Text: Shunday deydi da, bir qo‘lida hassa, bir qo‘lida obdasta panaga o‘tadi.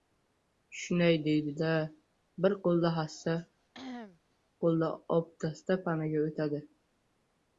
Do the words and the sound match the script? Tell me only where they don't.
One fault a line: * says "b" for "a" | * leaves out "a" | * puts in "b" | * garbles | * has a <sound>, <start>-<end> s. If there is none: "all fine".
* leaves out "bir"
* has a cough, 3.7-4.2 s